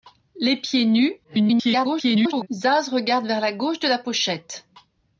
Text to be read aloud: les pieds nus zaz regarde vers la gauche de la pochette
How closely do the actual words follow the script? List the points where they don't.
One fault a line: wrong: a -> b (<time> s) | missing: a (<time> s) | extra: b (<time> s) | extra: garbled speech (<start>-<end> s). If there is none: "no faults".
extra: garbled speech (1.2-2.5 s)